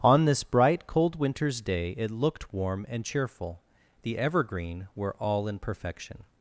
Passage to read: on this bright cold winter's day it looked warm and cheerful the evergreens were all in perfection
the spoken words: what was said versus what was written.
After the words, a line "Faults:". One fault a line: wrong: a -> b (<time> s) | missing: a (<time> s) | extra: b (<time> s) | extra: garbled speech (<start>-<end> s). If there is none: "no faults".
on this bright cold winter's day it looked warm and cheerful the evergreen were all in perfection
Faults:
wrong: evergreens -> evergreen (4.2 s)